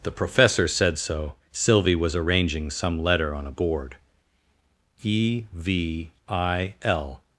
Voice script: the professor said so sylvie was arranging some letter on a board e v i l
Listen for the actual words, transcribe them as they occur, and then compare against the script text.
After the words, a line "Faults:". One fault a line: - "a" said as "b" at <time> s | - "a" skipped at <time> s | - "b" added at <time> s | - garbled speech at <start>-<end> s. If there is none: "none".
the professor said so sylvie was arranging some letter on a board e v i l
Faults:
none